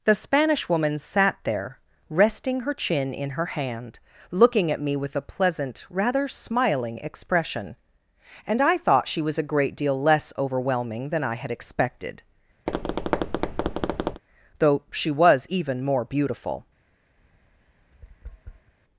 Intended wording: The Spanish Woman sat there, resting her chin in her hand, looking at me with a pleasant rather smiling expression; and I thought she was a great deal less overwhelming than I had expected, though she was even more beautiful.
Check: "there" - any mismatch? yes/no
no